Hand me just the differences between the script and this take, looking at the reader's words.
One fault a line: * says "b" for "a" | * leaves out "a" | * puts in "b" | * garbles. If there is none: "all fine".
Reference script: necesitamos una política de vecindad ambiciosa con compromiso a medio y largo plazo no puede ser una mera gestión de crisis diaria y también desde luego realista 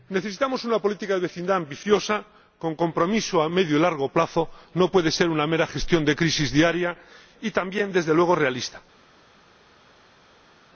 all fine